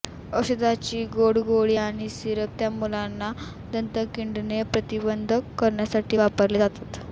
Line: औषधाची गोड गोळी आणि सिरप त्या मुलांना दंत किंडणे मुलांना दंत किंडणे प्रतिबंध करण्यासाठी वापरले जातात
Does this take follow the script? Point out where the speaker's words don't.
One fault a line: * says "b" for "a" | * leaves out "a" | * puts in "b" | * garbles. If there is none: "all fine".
* leaves out "मुलांना दंत किंडणे"